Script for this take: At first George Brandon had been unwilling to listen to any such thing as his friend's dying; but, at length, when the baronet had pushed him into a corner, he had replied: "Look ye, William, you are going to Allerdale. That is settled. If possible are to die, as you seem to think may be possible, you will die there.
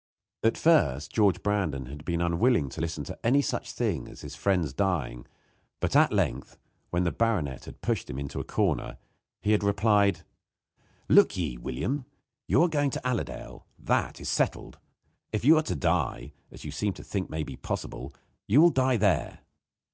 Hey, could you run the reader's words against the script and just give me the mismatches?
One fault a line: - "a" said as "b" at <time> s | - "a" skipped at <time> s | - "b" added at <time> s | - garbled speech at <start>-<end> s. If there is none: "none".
- "possible" said as "you" at 15.4 s